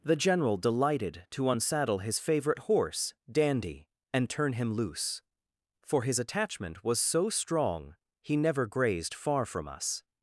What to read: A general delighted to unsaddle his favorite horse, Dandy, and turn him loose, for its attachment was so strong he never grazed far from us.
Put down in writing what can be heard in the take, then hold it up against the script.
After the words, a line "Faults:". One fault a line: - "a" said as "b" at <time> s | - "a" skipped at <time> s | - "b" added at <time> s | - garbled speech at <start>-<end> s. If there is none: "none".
The general delighted to unsaddle his favorite horse, Dandy, and turn him loose, for his attachment was so strong he never grazed far from us.
Faults:
- "A" said as "The" at 0.0 s
- "its" said as "his" at 6.0 s